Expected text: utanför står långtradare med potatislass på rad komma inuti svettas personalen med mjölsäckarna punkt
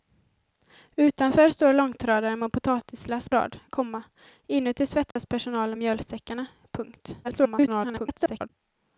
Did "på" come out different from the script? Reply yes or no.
yes